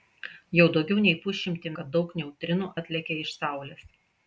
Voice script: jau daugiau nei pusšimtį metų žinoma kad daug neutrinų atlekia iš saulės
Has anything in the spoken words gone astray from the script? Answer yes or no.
yes